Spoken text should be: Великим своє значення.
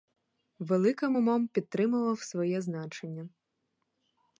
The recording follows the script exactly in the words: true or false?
false